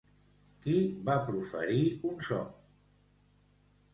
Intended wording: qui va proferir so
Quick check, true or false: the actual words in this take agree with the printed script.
false